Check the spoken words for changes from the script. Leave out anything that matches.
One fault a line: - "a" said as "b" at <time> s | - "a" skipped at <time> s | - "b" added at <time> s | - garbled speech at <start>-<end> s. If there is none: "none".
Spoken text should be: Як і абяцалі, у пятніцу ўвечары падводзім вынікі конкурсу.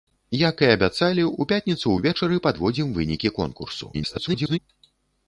- garbled speech at 3.9-4.6 s